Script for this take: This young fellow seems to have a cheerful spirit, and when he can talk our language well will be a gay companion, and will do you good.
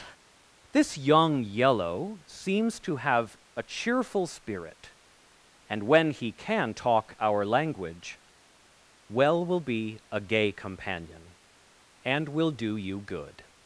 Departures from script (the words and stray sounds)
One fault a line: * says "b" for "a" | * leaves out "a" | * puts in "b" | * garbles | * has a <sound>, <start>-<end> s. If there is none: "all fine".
* says "yellow" for "fellow"